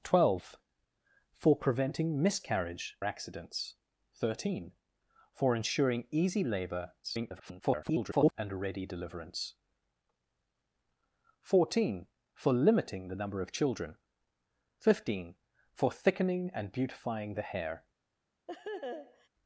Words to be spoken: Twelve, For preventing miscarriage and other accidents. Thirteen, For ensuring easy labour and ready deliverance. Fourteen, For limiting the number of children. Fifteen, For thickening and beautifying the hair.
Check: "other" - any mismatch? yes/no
yes